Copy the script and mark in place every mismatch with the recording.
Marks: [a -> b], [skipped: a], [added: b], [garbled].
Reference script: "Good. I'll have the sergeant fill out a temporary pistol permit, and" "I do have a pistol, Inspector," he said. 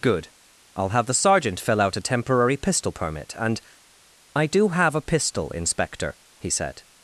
"Good. I'll have the sergeant fill out a temporary pistol permit, and" "I do have a pistol, Inspector," he said.